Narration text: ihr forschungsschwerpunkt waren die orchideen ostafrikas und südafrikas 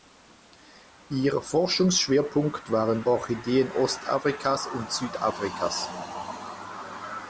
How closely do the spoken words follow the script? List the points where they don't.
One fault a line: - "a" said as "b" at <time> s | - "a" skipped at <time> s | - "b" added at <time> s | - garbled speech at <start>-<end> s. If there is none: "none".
- "die" skipped at 3.0 s